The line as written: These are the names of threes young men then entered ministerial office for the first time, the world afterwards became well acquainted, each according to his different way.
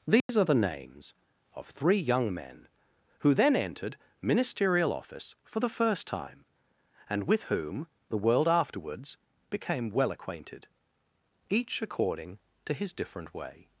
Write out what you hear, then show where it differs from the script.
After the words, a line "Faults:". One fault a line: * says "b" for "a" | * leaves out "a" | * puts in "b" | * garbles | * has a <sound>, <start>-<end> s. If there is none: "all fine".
These are the names of three young men who then entered ministerial office for the first time, and with whom the world afterwards became well acquainted, each according to his different way.
Faults:
* has a dropout, 0.2-0.3 s
* says "three" for "threes"
* puts in "who"
* puts in "and with whom"